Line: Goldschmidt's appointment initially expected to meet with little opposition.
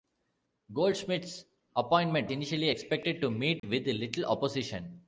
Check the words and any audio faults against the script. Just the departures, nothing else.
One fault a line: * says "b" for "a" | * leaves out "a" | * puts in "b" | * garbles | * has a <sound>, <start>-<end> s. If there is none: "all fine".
* has a dropout, 3.6-3.6 s